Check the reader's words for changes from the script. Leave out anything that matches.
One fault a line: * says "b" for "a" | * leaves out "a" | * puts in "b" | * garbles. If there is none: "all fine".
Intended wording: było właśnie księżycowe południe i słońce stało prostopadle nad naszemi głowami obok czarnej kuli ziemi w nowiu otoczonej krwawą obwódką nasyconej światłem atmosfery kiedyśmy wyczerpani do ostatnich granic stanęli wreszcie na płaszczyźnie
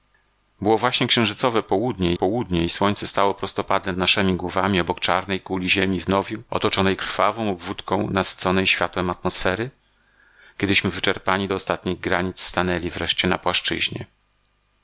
* puts in "południe"
* leaves out "nad"